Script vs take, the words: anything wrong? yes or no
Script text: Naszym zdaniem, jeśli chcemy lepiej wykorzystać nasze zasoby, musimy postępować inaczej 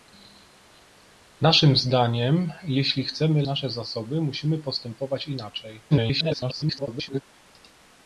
yes